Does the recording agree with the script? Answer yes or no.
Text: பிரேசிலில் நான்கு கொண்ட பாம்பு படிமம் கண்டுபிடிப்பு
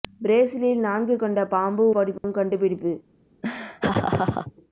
yes